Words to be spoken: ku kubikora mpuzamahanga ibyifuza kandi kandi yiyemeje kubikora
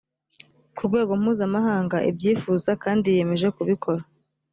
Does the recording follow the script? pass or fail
fail